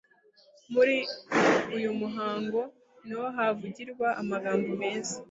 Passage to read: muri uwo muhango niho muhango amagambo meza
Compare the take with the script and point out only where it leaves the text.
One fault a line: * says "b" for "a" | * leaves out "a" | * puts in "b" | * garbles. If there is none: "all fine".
* says "uyu" for "uwo"
* says "havugirwa" for "muhango"